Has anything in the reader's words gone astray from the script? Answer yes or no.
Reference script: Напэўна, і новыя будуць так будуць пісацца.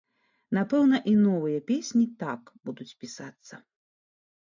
yes